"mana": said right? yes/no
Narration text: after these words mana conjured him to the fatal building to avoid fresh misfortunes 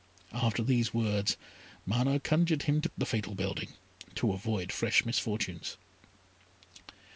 yes